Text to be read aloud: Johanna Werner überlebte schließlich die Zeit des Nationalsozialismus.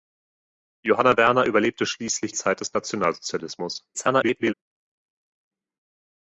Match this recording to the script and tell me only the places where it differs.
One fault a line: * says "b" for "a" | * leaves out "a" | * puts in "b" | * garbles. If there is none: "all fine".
* leaves out "die"
* garbles